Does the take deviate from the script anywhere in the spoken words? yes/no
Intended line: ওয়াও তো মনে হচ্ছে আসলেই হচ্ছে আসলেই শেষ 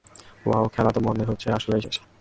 yes